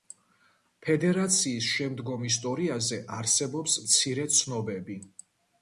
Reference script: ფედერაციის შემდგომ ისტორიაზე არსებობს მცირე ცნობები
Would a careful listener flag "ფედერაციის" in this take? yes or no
no